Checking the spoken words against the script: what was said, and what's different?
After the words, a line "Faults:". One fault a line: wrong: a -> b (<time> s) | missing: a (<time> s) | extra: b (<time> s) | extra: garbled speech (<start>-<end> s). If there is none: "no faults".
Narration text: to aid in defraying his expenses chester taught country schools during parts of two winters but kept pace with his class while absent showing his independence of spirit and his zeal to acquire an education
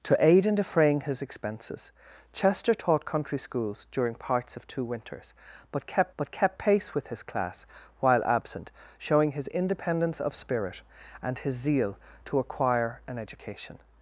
to aid in defraying his expenses chester taught country schools during parts of two winters but kept but kept pace with his class while absent showing his independence of spirit and his zeal to acquire an education
Faults:
extra: but kept (6.2 s)